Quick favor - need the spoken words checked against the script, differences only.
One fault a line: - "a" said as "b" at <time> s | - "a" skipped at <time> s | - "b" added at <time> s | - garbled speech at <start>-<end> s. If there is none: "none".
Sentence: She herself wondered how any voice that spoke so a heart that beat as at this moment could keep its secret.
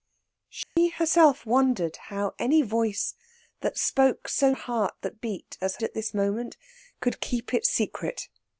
none